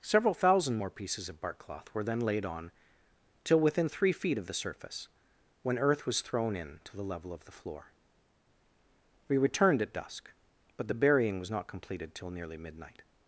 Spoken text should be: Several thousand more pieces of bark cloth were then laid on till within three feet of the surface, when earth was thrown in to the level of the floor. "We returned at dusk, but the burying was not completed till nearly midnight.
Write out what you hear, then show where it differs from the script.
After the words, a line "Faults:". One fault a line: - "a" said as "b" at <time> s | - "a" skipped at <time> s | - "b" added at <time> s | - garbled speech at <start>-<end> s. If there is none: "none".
Several thousand more pieces of bark cloth were then laid on till within three feet of the surface, when earth was thrown in to the level of the floor. "We returned at dusk, but the burying was not completed till nearly midnight.
Faults:
none